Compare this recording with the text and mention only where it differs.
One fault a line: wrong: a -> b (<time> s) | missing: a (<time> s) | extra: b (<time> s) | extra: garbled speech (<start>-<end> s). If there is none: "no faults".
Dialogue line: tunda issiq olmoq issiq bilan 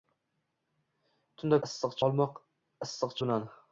no faults